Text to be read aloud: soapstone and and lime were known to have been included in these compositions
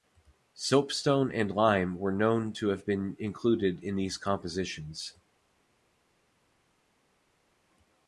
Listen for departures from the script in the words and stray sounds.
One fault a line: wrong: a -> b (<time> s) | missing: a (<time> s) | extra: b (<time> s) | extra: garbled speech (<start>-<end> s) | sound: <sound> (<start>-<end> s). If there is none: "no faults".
missing: and (1.5 s)